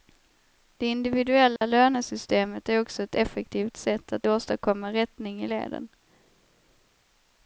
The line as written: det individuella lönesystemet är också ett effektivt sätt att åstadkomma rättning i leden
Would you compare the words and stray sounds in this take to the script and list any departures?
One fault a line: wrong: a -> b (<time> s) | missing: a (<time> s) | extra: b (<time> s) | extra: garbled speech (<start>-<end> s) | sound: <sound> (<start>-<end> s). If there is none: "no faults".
sound: dropout (1.6-1.6 s)